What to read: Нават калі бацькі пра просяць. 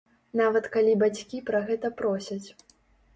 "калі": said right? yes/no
yes